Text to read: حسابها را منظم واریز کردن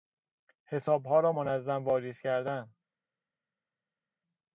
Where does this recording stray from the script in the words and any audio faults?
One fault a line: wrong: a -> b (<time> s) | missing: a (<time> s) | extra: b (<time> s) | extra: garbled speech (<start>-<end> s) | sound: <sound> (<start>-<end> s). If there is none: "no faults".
no faults